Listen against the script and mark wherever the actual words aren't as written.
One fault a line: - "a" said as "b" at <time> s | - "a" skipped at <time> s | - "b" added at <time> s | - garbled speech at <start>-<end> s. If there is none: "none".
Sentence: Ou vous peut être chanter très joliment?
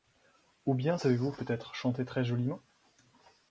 - "bien savez" added at 0.7 s